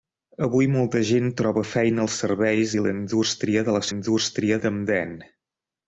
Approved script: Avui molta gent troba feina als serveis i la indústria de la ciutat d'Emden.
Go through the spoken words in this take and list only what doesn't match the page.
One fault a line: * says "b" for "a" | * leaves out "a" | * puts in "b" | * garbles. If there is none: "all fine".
* says "indústria" for "ciutat"